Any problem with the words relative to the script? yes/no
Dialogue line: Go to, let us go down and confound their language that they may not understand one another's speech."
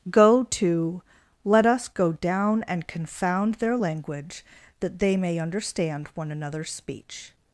yes